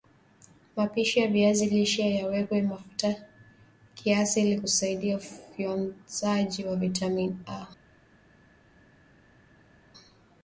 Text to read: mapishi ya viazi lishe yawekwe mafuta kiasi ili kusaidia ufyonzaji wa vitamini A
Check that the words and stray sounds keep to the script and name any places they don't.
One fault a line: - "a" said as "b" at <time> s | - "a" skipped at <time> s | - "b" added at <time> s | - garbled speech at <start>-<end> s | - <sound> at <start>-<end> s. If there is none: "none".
none